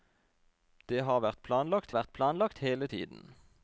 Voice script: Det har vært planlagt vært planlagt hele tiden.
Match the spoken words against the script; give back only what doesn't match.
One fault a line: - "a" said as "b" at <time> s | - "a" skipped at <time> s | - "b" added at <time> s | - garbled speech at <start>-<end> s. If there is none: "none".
none